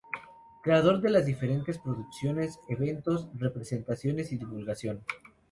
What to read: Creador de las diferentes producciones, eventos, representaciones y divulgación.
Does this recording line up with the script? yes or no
yes